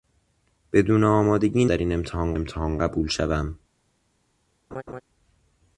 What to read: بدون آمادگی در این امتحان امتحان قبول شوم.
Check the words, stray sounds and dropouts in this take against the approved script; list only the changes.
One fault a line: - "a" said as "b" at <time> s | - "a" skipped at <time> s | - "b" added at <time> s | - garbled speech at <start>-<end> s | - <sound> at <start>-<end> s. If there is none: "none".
- laugh at 4.7-5.0 s